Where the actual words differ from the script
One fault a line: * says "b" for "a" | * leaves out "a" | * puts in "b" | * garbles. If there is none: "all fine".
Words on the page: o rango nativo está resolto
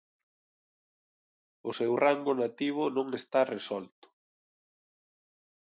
* puts in "seu"
* puts in "non"